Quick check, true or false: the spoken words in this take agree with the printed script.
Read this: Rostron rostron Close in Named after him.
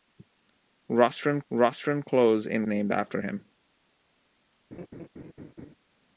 true